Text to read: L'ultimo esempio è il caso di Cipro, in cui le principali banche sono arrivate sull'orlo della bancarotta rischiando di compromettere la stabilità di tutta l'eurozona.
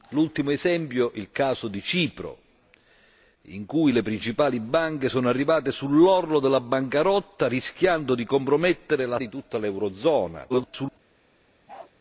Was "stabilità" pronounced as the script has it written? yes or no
no